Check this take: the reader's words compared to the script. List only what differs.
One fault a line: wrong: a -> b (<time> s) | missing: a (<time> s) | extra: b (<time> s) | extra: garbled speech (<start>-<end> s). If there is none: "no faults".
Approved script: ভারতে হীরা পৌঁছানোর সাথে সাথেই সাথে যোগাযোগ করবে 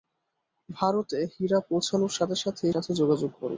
no faults